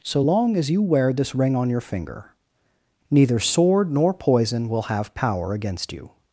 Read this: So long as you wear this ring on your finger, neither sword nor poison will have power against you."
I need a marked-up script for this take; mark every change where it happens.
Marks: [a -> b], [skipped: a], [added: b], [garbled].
So long as you wear this ring on your finger, neither sword nor poison will have power against you."